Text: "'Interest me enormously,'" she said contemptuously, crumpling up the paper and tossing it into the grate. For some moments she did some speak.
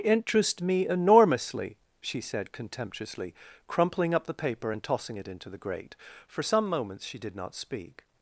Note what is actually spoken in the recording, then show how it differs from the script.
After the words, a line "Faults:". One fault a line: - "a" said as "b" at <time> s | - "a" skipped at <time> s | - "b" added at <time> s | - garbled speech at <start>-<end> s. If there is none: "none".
"'Interest me enormously,'" she said contemptuously, crumpling up the paper and tossing it into the grate. For some moments she did not speak.
Faults:
- "some" said as "not" at 7.3 s